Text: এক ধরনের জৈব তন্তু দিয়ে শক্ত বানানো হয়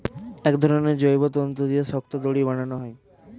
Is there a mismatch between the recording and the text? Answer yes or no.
yes